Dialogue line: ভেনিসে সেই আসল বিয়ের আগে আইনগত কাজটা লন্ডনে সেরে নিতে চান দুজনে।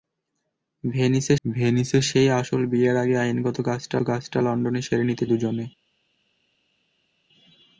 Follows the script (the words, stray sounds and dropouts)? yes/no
no